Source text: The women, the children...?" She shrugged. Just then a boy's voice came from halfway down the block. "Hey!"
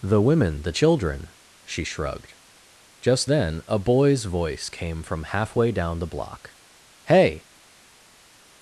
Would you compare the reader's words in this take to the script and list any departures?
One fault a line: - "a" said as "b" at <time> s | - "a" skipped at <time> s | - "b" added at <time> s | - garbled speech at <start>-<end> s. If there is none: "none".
none